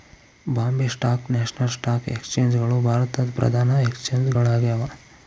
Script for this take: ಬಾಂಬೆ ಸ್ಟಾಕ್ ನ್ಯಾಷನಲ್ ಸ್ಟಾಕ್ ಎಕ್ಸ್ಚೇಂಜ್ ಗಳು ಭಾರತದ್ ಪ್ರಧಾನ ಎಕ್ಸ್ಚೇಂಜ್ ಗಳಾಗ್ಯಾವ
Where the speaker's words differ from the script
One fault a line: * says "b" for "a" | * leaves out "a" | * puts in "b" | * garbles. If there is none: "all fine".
all fine